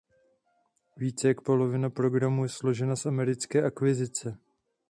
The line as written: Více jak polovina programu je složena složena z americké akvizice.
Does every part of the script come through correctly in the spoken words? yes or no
no